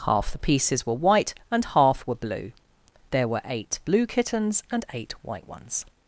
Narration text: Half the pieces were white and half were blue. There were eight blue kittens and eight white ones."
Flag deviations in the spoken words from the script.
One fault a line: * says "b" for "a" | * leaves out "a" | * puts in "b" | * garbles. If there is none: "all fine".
all fine